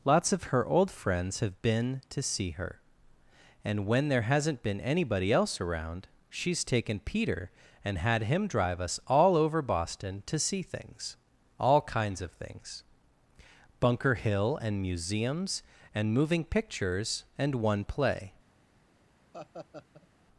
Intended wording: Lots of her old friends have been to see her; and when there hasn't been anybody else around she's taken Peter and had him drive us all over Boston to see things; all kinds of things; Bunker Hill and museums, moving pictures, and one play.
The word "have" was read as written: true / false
true